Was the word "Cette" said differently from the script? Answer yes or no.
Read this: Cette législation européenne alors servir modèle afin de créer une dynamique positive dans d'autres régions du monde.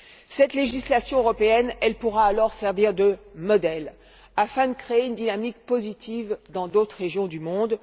no